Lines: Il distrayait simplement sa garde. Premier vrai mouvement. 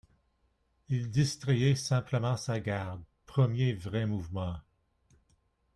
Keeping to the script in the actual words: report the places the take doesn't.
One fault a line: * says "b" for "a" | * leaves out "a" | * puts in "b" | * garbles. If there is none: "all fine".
all fine